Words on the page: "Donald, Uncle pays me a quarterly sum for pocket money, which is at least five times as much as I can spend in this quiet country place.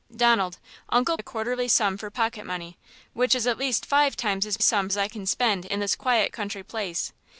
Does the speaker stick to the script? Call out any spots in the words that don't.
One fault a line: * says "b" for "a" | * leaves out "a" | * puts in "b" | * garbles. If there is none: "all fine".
* leaves out "pays me"
* says "sum" for "much"